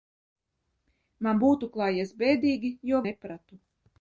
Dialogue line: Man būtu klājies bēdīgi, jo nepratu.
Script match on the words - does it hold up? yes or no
yes